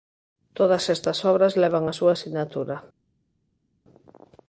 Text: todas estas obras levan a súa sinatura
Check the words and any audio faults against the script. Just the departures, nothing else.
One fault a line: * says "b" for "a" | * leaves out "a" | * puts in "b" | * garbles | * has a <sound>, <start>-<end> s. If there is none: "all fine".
all fine